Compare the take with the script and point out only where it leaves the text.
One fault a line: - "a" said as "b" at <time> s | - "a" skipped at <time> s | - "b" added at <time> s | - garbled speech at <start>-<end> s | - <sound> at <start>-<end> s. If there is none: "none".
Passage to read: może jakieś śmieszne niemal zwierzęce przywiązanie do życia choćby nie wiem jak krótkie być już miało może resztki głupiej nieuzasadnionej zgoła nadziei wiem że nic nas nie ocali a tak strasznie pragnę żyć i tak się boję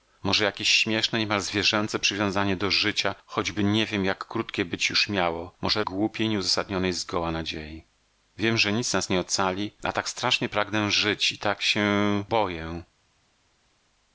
- "resztki" skipped at 5.8 s